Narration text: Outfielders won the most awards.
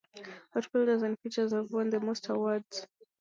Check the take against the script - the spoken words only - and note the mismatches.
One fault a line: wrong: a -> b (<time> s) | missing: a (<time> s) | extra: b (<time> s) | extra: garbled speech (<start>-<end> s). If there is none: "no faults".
extra: and Pitchers have (1.0 s)